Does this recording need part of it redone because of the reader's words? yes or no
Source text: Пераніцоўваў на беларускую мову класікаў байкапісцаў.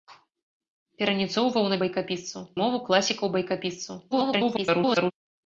yes